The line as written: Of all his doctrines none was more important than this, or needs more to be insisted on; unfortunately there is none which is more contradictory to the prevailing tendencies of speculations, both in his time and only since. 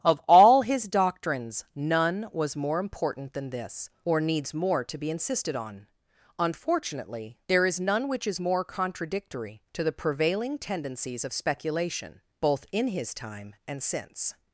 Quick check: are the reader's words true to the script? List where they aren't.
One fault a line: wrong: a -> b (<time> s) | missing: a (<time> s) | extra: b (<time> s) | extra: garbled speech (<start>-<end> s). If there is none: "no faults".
wrong: speculations -> speculation (11.3 s)
missing: only (13.8 s)